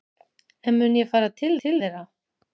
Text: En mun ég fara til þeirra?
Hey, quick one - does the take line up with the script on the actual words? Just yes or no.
no